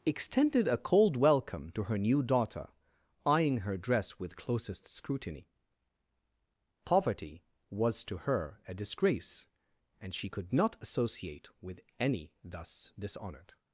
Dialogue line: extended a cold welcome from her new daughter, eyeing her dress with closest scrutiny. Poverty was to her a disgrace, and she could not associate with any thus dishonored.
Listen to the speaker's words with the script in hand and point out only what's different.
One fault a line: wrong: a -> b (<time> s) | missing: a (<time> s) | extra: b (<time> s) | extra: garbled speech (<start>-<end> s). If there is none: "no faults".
wrong: from -> to (1.7 s)